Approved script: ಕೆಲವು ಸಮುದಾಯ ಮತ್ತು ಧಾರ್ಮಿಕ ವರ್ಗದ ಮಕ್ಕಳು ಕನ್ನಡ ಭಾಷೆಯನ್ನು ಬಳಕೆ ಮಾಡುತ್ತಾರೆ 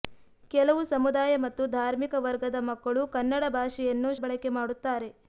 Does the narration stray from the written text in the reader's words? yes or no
no